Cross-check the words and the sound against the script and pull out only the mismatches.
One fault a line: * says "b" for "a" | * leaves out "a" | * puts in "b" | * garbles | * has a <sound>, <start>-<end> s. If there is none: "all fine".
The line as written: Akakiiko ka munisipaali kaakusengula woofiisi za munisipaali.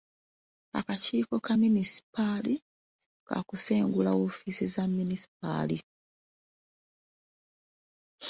all fine